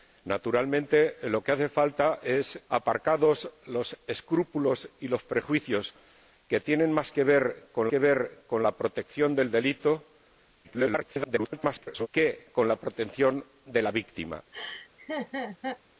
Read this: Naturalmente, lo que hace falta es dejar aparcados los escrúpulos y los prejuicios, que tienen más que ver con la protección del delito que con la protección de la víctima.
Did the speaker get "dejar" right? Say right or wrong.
wrong